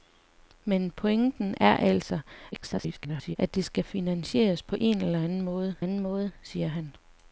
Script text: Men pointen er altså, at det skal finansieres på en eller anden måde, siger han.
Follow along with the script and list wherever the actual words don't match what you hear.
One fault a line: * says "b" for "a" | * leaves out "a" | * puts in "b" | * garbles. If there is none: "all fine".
* garbles
* puts in "anden måde"